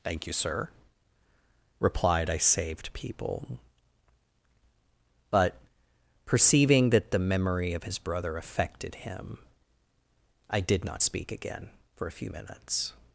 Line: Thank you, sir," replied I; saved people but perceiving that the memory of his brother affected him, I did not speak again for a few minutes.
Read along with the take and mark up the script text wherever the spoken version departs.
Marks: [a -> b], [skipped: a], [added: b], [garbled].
Thank you, sir," replied I; saved people but perceiving that the memory of his brother affected him, I did not speak again for a few minutes.